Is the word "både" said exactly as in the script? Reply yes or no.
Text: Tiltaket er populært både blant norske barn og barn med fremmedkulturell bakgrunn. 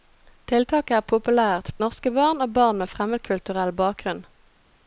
no